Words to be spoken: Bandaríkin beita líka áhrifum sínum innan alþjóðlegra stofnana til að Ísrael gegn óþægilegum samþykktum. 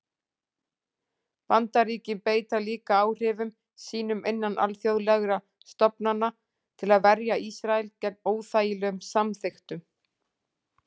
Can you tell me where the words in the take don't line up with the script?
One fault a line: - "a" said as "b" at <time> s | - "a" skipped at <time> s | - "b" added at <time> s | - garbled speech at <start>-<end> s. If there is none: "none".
- "verja" added at 7.1 s